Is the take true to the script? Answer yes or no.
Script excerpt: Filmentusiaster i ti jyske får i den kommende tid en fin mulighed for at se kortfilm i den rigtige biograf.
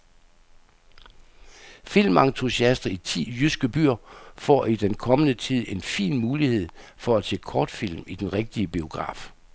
no